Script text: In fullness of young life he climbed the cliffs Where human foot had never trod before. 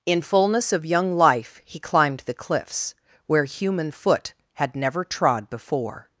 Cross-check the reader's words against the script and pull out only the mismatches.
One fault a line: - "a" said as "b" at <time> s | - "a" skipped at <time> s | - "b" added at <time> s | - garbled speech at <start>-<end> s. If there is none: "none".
none